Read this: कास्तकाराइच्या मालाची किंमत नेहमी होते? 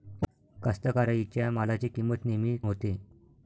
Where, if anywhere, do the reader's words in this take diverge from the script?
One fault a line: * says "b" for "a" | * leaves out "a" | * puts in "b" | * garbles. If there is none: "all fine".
all fine